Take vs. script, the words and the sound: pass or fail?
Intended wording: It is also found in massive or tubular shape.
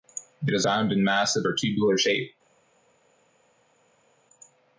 fail